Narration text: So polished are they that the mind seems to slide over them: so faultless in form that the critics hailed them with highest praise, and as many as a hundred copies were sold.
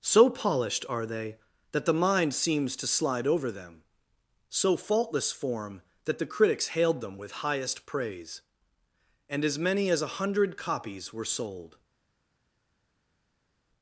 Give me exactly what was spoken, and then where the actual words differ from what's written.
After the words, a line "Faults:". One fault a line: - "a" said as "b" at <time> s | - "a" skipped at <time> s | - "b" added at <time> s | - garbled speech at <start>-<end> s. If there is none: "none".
So polished are they that the mind seems to slide over them: so faultless form that the critics hailed them with highest praise, and as many as a hundred copies were sold.
Faults:
- "in" skipped at 5.3 s